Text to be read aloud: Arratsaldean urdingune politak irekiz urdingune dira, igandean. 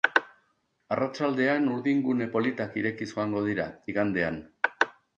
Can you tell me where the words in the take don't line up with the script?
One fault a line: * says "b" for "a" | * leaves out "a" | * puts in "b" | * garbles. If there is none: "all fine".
* says "joango" for "urdingune"